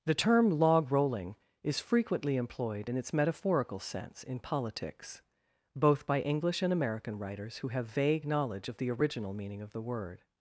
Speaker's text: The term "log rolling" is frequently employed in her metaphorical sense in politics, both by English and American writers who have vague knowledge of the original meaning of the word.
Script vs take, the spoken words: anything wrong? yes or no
yes